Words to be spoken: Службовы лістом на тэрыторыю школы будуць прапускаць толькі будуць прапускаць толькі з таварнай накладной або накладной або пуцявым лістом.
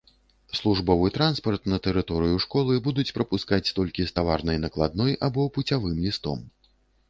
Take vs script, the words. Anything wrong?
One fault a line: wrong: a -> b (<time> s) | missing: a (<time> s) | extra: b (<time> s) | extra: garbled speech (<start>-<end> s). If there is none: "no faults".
wrong: лістом -> транспарт (1.2 s)
missing: будуць прапускаць толькі (4.0 s)
missing: накладной або (5.5 s)